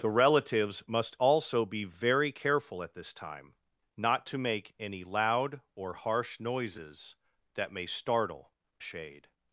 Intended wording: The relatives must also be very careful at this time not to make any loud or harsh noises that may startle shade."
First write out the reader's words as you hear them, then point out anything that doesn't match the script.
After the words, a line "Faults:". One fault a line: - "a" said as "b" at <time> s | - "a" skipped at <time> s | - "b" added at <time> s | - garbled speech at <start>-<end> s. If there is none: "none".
The relatives must also be very careful at this time not to make any loud or harsh noises that may startle shade."
Faults:
none